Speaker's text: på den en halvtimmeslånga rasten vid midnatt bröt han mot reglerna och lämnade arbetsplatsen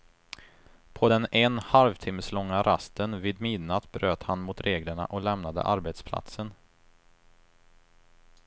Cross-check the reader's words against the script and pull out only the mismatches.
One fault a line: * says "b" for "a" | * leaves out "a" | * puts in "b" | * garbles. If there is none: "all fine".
all fine